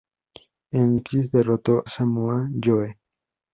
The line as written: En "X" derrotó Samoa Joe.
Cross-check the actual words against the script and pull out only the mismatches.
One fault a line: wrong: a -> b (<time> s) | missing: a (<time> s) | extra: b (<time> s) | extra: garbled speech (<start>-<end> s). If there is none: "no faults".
no faults